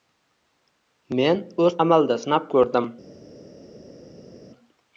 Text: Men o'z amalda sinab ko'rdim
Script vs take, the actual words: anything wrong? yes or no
no